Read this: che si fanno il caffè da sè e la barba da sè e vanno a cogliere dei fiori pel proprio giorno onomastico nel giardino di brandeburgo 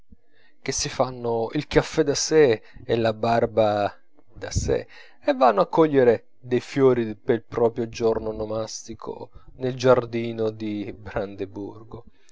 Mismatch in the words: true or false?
false